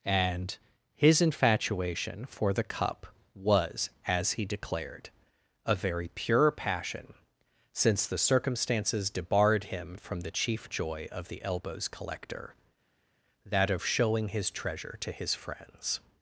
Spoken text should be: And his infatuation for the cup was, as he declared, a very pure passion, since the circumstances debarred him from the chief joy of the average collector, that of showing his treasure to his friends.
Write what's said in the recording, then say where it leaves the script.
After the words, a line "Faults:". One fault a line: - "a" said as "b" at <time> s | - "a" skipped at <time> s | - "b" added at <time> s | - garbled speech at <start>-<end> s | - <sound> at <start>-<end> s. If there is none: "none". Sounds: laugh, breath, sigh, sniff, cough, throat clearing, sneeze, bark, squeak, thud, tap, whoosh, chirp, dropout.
And his infatuation for the cup was, as he declared, a very pure passion, since the circumstances debarred him from the chief joy of the elbows collector, that of showing his treasure to his friends.
Faults:
- "average" said as "elbows" at 11.4 s